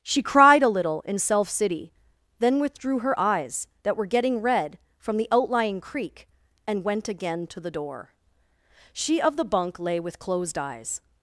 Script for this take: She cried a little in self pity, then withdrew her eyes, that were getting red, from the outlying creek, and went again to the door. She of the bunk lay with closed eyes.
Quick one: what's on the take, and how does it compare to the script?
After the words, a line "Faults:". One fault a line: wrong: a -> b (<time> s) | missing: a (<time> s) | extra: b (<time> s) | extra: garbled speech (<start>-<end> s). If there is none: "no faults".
She cried a little in self city, then withdrew her eyes, that were getting red, from the outlying creek, and went again to the door. She of the bunk lay with closed eyes.
Faults:
wrong: pity -> city (1.5 s)